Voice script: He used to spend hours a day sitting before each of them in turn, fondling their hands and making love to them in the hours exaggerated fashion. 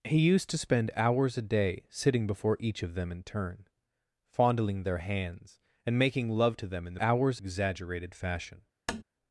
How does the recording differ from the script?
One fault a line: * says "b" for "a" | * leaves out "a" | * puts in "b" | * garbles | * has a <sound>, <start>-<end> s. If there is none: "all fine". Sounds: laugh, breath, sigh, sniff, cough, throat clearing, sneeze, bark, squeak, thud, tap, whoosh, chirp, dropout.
* has a tap, 8.9-9.0 s